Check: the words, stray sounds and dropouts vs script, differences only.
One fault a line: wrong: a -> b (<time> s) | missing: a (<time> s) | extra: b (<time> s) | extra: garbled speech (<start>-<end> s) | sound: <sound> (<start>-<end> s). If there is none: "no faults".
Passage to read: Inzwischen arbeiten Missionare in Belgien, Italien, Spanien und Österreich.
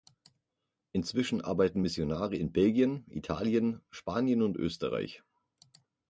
no faults